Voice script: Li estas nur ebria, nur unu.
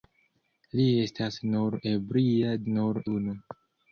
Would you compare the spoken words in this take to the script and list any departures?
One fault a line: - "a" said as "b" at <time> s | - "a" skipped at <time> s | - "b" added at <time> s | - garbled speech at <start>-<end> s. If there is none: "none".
none